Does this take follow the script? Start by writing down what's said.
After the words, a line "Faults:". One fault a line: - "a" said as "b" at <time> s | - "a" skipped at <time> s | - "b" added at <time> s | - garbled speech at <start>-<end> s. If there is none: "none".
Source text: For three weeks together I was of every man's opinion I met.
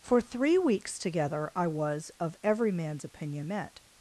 For three weeks together I was of every man's opinion met.
Faults:
- "I" skipped at 3.5 s